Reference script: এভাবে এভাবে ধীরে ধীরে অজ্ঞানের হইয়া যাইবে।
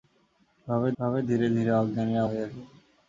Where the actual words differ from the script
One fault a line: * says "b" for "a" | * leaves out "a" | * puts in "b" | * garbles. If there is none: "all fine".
all fine